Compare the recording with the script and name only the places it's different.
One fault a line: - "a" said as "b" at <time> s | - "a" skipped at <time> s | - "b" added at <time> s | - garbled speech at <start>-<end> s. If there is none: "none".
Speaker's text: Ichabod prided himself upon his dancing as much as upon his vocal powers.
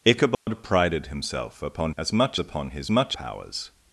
- "his dancing" skipped at 1.9 s
- "as" skipped at 2.4 s
- "vocal" said as "much" at 2.9 s